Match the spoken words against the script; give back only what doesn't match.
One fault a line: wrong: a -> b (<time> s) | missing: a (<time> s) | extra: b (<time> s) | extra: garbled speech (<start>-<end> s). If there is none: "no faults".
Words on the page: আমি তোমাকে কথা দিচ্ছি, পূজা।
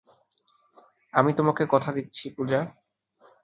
no faults